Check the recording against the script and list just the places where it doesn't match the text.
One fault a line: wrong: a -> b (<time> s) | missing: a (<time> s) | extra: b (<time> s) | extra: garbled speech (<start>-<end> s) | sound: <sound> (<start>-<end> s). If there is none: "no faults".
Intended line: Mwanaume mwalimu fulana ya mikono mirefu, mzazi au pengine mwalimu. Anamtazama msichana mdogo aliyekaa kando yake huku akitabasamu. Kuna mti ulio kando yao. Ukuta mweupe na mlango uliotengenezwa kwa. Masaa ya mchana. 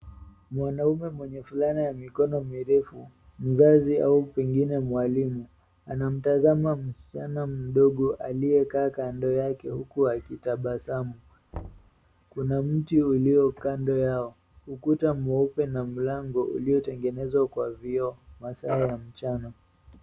wrong: mwalimu -> mwenye (1.1 s)
sound: thud (11.5-11.9 s)
extra: vioo (17.7 s)